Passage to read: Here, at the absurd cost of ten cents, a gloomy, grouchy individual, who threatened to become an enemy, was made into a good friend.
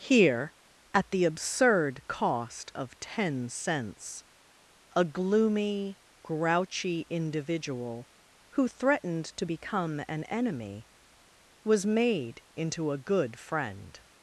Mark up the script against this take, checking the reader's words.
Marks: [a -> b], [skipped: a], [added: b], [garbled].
Here, at the absurd cost of ten cents, a gloomy, grouchy individual, who threatened to become an enemy, was made into a good friend.